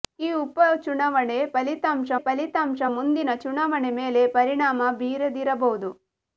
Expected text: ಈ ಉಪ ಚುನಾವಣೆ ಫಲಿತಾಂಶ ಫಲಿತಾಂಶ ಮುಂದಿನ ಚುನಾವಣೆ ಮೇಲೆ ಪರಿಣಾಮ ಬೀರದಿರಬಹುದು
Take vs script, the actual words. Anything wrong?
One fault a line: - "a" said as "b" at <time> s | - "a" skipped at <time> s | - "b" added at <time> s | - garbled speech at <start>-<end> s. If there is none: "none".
none